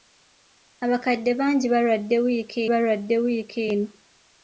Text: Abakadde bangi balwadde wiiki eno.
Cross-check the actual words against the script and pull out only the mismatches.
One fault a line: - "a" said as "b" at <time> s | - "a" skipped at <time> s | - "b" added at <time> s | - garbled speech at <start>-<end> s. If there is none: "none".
- "balwadde wiiki" added at 2.7 s